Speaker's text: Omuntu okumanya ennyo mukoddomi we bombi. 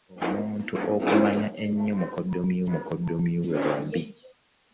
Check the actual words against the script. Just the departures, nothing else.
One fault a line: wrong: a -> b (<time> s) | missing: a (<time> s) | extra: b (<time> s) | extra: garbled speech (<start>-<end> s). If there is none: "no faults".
extra: mukoddomi (2.7 s)